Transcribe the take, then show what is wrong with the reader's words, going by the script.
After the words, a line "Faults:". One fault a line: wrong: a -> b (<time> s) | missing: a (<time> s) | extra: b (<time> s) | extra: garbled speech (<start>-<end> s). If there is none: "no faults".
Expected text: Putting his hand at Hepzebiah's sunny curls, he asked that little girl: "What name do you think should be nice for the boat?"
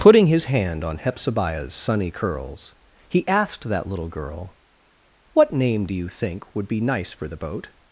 Putting his hand on Hepzebiah's sunny curls, he asked that little girl: "What name do you think would be nice for the boat?"
Faults:
wrong: at -> on (0.8 s)
wrong: should -> would (6.6 s)